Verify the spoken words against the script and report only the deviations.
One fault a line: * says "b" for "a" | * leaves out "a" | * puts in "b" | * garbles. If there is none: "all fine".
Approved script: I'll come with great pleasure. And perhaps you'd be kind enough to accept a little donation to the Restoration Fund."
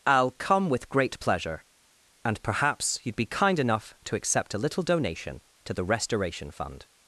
all fine